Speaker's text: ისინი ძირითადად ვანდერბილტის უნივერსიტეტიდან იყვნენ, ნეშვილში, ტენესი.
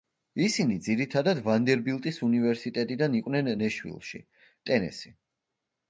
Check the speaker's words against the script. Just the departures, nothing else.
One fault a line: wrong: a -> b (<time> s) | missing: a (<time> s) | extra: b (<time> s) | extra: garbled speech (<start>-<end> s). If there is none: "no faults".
no faults